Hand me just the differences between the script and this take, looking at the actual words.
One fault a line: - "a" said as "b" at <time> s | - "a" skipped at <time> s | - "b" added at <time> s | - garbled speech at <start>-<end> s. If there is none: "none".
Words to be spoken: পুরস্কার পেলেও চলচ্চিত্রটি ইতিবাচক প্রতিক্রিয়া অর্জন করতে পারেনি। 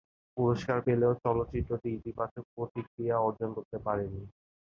none